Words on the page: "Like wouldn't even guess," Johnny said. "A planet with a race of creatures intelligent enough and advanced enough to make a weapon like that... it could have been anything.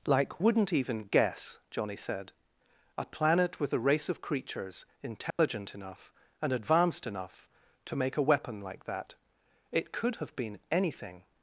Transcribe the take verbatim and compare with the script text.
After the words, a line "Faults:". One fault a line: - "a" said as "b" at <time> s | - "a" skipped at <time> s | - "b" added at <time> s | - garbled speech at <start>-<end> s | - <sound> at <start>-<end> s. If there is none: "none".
"Like wouldn't even guess," Johnny said. "A planet with a race of creatures intelligent enough and advanced enough to make a weapon like that... it could have been anything.
Faults:
- dropout at 5.3-5.4 s